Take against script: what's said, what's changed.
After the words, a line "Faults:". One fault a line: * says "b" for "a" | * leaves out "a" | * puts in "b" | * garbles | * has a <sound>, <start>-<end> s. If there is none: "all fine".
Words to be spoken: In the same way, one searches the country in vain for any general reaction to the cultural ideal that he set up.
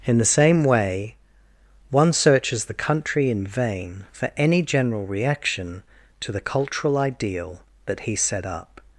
In the same way, one searches the country in vain for any general reaction to the cultural ideal that he set up.
Faults:
all fine